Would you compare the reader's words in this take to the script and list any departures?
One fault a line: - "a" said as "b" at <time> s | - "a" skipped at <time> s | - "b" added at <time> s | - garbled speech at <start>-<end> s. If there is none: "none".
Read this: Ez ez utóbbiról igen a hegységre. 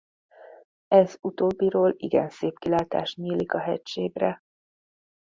- "ez" skipped at 1.2 s
- "szép kilátás nyílik" added at 2.3 s